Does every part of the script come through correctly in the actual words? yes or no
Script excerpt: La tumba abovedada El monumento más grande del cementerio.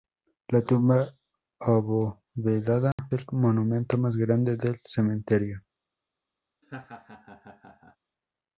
yes